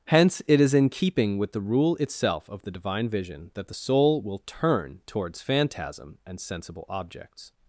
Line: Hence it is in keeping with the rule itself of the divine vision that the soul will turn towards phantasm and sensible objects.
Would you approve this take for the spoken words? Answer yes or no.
yes